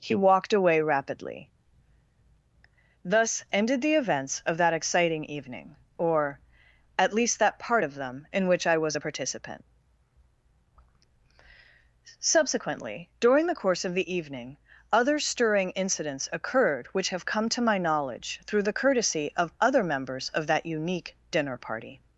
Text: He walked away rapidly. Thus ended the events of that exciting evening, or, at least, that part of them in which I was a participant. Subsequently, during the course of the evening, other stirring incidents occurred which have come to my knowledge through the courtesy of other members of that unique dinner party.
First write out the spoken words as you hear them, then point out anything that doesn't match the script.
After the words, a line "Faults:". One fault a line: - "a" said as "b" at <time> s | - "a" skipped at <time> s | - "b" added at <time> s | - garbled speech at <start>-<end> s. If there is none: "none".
He walked away rapidly. Thus ended the events of that exciting evening, or, at least, that part of them in which I was a participant. Subsequently, during the course of the evening, other stirring incidents occurred which have come to my knowledge through the courtesy of other members of that unique dinner party.
Faults:
none